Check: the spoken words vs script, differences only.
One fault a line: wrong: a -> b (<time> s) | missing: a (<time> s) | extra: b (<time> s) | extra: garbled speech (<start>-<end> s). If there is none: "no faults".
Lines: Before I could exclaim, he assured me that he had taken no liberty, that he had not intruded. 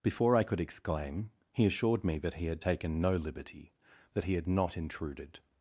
no faults